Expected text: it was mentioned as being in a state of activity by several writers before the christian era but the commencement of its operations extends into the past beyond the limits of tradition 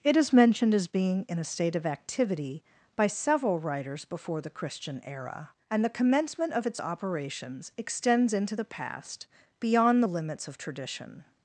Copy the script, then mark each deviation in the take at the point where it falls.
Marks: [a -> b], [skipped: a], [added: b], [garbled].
it [was -> is] mentioned as being in a state of activity by several writers before the christian era [but -> and] the commencement of its operations extends into the past beyond the limits of tradition